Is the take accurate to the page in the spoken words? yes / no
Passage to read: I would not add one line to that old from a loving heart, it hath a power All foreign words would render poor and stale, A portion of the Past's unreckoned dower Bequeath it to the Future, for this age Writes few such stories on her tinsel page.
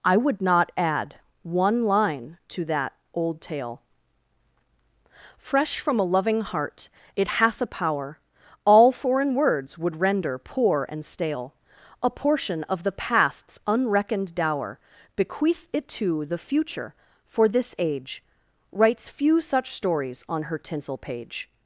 no